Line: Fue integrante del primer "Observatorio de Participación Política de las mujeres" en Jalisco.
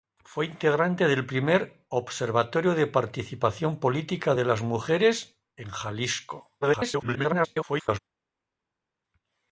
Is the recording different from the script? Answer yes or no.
yes